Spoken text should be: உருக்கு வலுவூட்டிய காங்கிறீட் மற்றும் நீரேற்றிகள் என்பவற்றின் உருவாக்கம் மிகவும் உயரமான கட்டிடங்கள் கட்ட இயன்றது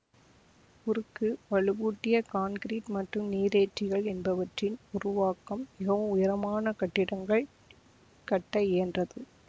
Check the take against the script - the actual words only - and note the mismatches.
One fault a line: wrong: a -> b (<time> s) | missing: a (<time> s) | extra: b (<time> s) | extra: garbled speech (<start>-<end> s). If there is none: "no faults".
no faults